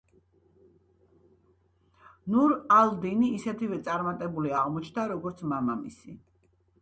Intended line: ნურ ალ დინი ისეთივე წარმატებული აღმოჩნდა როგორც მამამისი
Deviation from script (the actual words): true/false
false